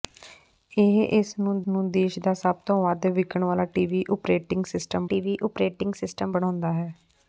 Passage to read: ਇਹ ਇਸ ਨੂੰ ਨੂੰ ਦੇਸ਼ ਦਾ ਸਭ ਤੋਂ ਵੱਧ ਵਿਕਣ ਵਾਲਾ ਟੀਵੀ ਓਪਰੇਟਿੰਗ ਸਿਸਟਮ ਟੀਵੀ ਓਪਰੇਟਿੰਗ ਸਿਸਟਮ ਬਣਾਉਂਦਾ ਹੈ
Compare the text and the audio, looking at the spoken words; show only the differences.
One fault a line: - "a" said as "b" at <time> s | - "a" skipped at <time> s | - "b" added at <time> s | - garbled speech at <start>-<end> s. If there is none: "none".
none